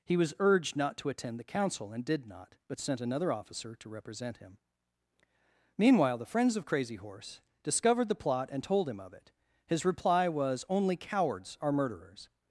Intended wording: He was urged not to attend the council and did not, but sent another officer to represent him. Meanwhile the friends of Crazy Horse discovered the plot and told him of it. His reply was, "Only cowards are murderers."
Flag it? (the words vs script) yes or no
no